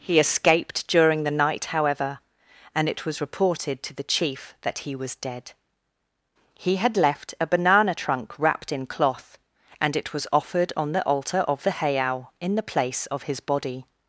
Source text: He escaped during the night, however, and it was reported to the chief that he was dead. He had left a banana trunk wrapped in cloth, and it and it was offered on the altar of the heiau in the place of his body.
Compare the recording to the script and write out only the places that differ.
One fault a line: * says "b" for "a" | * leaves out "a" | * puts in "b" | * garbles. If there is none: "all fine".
* leaves out "and it"